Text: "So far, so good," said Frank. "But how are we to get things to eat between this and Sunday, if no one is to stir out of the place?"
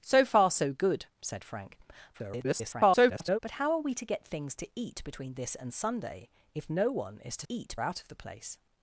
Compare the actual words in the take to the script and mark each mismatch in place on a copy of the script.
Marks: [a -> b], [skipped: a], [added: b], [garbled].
"So far, so good," said Frank. [garbled] "But how are we to get things to eat between this and Sunday, if no one is to [stir -> eat] out of the place?"